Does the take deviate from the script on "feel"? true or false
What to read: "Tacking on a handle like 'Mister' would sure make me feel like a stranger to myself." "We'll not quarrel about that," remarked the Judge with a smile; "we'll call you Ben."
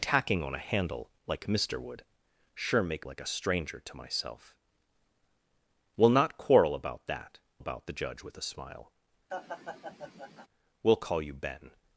true